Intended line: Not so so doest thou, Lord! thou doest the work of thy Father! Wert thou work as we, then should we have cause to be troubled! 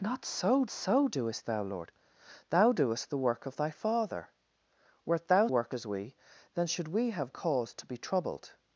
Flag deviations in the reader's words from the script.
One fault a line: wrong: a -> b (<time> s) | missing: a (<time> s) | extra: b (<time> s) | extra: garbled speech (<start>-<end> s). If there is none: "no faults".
no faults